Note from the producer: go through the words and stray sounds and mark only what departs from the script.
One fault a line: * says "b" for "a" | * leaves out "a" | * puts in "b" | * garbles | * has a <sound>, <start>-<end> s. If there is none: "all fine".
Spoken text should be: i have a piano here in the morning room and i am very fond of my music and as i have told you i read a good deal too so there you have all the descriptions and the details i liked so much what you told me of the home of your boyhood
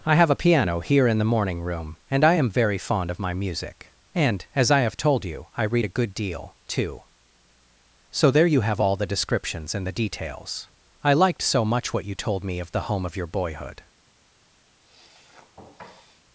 * has a sniff, 14.8-16.2 s